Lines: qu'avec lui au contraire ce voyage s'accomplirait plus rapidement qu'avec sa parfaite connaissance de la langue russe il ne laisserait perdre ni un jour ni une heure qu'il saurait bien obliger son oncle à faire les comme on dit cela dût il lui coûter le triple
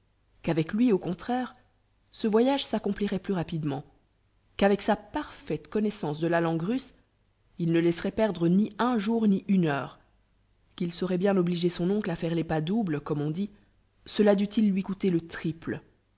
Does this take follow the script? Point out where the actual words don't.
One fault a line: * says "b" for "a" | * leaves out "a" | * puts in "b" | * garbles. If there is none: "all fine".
* puts in "pas doubles"